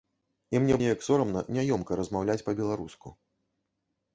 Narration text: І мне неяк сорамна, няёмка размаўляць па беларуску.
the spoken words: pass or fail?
pass